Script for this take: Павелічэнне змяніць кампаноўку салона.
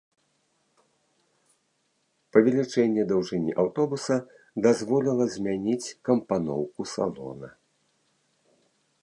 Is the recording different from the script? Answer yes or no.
yes